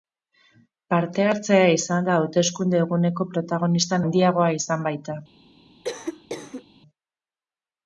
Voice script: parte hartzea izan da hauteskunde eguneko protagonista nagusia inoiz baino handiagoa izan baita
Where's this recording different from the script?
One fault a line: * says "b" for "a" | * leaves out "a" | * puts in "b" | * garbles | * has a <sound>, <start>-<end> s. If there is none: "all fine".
* leaves out "nagusia inoiz baino"
* has a cough, 5.8-6.6 s